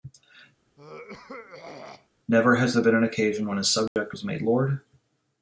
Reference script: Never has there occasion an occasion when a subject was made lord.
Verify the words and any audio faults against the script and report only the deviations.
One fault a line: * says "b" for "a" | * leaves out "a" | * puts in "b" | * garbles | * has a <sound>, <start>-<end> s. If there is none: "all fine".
* has a throat clearing, 0.8-2.1 s
* says "been" for "occasion"
* has a dropout, 3.9-4.0 s